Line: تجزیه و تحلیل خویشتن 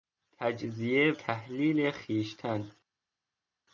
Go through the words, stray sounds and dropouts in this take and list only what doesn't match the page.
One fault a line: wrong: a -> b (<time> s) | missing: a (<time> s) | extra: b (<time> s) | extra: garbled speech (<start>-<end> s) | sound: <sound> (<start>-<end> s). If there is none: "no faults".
missing: و (1.1 s)